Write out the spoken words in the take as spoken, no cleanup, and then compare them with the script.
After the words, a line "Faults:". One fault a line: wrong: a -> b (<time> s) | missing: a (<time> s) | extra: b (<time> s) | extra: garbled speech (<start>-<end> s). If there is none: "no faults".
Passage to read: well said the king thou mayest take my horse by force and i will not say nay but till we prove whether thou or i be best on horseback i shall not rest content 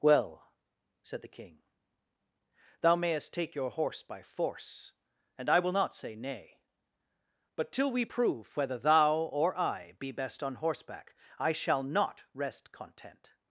well said the king thou mayest take your horse by force and i will not say nay but till we prove whether thou or i be best on horseback i shall not rest content
Faults:
wrong: my -> your (3.5 s)